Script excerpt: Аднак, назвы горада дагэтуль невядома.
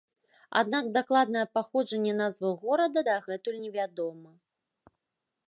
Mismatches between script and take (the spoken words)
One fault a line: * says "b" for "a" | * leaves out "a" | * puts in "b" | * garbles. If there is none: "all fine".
* puts in "дакладнае паходжанне"